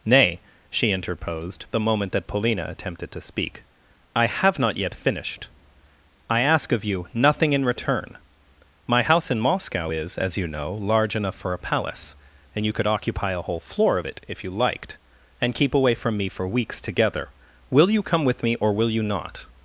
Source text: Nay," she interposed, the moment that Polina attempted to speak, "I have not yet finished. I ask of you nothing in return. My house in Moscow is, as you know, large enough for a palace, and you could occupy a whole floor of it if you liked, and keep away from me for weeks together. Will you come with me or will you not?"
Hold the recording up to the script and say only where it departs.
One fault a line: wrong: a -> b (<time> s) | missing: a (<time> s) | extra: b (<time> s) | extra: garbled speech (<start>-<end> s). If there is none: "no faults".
no faults